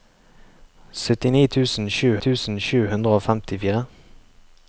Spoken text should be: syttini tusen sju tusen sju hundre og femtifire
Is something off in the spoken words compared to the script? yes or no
no